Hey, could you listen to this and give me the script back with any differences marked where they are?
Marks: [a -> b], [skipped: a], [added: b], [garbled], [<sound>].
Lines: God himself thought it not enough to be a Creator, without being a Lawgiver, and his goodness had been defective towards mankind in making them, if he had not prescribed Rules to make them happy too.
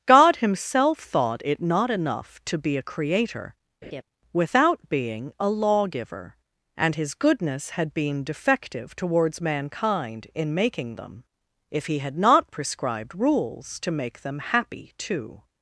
God himself thought it not enough to be a Creator, [laugh] without being a Lawgiver, and his goodness had been defective towards mankind in making them, if he had not prescribed Rules to make them happy too.